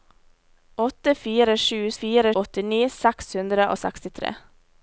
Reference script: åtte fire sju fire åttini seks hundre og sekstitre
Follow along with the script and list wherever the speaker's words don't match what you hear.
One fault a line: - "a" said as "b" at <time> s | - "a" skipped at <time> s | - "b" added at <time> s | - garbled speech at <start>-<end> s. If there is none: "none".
none